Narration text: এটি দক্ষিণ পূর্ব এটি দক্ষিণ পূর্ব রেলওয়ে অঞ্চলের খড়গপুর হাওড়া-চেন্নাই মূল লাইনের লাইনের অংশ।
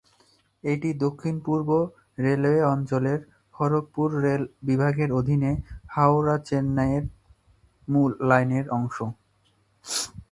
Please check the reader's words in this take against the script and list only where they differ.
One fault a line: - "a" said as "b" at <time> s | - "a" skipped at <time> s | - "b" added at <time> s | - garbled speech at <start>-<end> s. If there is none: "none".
- "এটি দক্ষিণ পূর্ব রেলওয়ে অঞ্চলের খড়গপুর" said as "রেলওয়ে অঞ্চলের খড়গপুর রেল বিভাগের অধীনে" at 2.2 s
- "লাইনের" skipped at 8.7 s